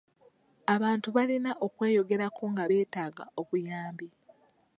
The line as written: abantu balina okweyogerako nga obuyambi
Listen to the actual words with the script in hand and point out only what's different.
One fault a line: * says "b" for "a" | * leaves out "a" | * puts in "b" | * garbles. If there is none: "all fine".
* puts in "beetaaga"